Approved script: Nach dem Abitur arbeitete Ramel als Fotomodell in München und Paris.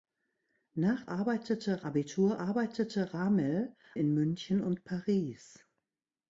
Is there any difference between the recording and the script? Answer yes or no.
yes